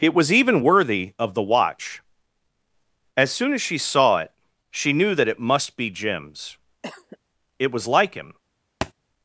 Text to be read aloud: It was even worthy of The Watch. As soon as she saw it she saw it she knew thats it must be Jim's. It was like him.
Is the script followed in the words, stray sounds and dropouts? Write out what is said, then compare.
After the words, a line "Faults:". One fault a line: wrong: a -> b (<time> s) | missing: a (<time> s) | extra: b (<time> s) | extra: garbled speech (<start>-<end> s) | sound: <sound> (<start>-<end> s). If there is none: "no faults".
It was even worthy of The Watch. As soon as she saw it she knew that it must be Jim's. It was like him.
Faults:
missing: saw it she (4.9 s)
wrong: thats -> that (5.2 s)
sound: cough (6.8-7.2 s)
sound: thud (8.8-8.9 s)